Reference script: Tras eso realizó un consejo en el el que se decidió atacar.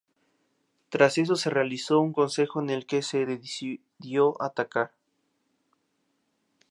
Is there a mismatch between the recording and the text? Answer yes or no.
yes